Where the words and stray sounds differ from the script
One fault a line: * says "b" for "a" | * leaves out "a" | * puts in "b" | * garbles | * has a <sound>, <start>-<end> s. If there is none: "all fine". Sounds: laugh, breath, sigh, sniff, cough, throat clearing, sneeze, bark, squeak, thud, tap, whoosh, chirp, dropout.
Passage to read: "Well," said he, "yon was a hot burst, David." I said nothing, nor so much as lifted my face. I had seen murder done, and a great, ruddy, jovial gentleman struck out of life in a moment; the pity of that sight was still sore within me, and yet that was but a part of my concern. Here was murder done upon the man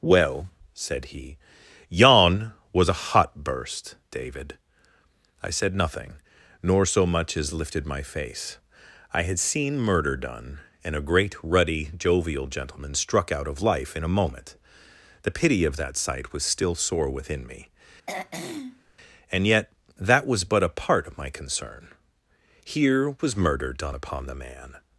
* has a throat clearing, 18.1-18.9 s